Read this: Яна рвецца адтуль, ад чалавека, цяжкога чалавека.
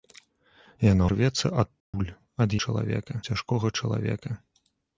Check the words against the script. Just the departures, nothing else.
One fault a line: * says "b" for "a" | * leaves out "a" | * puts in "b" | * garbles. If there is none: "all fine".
all fine